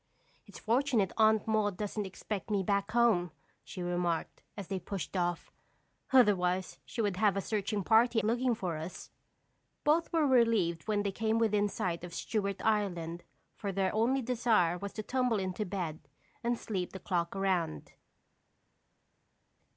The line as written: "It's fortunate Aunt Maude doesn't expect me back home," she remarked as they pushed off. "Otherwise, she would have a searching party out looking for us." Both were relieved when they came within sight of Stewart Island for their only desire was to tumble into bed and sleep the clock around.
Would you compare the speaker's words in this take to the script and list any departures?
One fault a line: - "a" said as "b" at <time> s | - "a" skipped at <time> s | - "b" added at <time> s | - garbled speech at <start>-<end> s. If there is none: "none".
- "out" skipped at 8.2 s